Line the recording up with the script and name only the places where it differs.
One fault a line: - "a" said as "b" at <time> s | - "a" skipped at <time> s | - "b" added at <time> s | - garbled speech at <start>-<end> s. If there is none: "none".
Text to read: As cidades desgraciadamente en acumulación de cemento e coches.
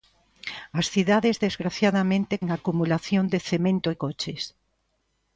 none